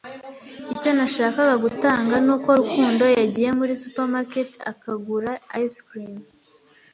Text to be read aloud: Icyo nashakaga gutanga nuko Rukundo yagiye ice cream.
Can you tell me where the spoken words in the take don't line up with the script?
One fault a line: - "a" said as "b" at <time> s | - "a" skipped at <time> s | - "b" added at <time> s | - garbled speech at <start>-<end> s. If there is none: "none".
- "muri supermarket akagura" added at 3.6 s